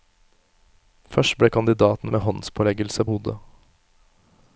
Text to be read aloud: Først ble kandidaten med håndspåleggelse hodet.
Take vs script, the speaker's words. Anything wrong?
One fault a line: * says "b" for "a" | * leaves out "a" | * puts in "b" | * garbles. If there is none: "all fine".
all fine